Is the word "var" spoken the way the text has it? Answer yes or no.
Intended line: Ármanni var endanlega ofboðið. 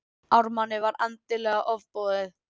yes